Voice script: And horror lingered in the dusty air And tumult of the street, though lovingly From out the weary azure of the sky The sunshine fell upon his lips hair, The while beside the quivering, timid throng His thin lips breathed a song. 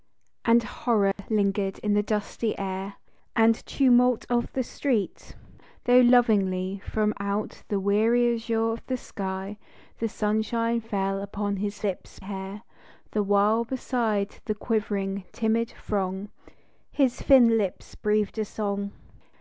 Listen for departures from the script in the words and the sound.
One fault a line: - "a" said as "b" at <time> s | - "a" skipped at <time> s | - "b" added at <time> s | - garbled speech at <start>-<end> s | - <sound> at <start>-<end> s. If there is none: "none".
- dropout at 1.1-1.2 s